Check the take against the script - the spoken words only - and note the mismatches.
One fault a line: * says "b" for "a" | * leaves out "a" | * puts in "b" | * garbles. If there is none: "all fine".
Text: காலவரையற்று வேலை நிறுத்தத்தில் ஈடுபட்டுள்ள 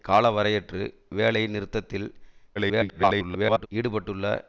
* garbles